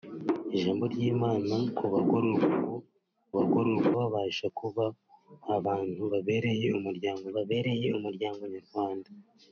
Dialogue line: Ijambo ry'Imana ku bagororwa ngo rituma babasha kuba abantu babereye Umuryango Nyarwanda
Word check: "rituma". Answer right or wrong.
wrong